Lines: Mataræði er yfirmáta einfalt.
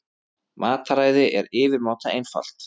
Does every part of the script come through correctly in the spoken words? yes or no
yes